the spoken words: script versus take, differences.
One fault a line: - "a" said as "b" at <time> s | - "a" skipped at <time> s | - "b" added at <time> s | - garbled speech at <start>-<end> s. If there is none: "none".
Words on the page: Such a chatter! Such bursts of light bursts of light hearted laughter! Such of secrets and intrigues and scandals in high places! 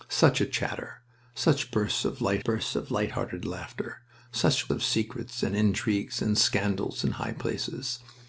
none